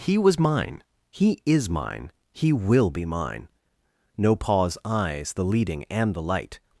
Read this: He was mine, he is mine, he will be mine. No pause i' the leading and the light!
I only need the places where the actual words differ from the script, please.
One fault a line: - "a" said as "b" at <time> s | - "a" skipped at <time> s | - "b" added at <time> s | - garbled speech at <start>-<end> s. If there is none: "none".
- "i" said as "eyes" at 4.8 s